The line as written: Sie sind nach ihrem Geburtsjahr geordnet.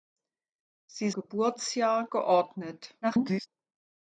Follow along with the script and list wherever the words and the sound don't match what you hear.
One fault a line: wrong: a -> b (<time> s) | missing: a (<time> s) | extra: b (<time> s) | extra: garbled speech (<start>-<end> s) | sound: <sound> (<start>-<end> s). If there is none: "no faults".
missing: sind nach ihrem (1.1 s)
extra: garbled speech (3.0-3.5 s)